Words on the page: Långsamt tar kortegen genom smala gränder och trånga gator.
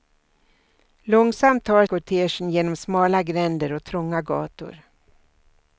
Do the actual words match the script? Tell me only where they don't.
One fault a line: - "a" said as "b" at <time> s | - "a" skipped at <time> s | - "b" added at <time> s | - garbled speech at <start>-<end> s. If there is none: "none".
none